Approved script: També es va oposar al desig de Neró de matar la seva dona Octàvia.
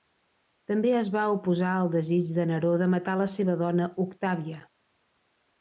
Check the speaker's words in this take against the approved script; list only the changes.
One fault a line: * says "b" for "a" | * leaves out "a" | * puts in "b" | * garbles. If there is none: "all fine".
all fine